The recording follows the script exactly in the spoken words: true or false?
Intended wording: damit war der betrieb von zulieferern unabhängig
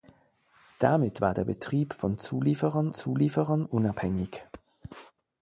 false